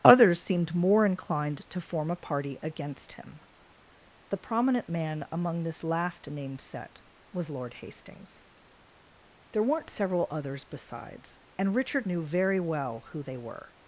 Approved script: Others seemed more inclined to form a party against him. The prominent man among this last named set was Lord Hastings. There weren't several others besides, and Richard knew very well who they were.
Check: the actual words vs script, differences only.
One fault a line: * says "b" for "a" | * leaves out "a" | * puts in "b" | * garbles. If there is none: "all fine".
all fine